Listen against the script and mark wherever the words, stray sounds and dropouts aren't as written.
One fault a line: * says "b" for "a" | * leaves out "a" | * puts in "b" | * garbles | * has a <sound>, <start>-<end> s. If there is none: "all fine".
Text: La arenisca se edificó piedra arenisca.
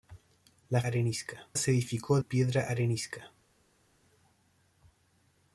all fine